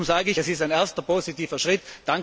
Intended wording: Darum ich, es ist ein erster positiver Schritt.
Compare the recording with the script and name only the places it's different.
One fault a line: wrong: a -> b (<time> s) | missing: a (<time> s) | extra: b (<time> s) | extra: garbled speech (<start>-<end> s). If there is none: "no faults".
extra: sage (0.2 s)